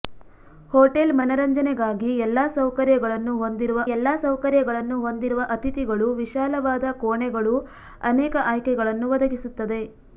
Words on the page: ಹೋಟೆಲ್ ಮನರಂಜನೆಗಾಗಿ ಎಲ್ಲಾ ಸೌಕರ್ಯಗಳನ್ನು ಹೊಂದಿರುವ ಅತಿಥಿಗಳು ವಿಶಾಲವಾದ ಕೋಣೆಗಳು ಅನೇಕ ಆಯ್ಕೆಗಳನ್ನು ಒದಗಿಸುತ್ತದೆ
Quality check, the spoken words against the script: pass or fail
fail